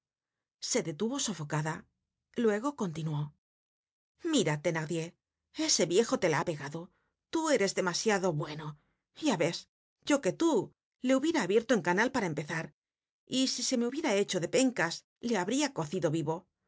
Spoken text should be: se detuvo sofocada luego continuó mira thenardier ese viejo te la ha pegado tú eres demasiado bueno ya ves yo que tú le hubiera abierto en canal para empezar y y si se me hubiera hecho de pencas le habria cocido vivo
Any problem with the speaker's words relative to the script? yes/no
yes